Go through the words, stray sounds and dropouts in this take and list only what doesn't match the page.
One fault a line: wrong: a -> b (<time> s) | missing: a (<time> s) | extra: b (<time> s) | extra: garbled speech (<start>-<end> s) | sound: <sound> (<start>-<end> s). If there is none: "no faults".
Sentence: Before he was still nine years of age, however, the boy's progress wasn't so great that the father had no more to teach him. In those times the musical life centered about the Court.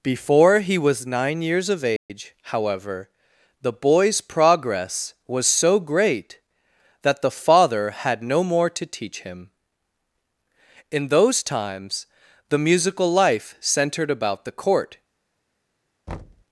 missing: still (1.1 s)
sound: dropout (2.0-2.1 s)
wrong: wasn't -> was (5.3 s)
sound: thud (16.1-16.4 s)